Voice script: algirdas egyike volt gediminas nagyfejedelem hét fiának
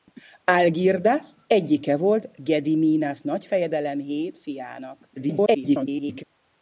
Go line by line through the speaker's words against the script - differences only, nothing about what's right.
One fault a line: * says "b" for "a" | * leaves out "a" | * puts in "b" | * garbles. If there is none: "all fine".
* garbles